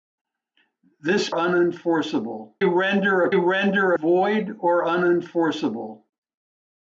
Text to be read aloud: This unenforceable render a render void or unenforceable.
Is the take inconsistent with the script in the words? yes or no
no